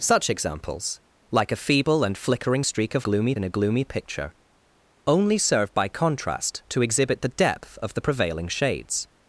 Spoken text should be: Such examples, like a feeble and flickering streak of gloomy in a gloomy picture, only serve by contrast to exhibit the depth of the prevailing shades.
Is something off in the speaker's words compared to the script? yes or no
no